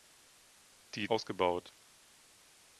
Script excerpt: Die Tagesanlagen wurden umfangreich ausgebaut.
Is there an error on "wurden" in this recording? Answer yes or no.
yes